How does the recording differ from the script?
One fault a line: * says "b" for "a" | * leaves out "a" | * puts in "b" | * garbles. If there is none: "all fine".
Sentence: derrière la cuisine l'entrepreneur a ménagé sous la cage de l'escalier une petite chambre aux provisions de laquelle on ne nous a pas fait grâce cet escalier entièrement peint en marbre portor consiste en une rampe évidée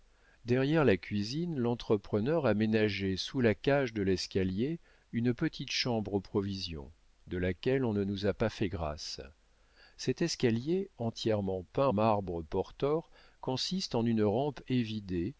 * leaves out "en"